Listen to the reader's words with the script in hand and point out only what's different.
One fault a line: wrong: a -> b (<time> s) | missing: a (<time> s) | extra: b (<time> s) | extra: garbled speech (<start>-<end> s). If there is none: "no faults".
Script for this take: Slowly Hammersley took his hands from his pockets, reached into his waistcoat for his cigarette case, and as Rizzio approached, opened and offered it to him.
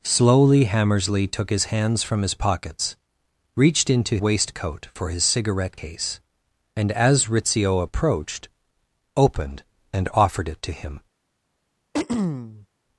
missing: his (4.2 s)